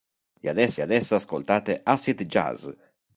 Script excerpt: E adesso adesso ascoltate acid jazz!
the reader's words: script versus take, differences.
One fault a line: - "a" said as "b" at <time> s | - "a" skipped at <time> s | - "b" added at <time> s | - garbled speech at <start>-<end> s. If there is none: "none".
none